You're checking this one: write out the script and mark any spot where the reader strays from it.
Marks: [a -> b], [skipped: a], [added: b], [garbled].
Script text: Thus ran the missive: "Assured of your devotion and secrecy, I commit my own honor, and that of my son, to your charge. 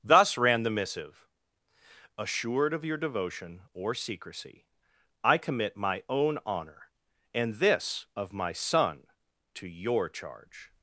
Thus ran the missive: "Assured of your devotion [and -> or] secrecy, I commit my own honor, and [that -> this] of my son, to your charge.